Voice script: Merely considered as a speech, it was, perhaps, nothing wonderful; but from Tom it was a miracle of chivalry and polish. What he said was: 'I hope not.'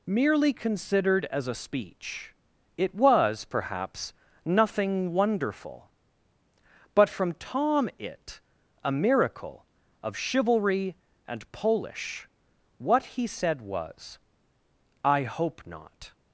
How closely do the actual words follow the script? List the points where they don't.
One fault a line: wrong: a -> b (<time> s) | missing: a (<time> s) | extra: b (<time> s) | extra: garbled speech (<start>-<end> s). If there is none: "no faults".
missing: was (8.4 s)